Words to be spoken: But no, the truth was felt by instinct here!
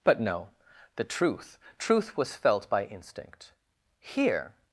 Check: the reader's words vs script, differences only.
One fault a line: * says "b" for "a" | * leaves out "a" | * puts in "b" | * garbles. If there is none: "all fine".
* puts in "truth"